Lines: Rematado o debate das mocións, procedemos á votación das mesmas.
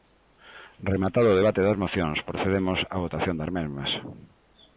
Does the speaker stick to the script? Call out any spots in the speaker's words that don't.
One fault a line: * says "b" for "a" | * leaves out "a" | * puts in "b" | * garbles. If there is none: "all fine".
all fine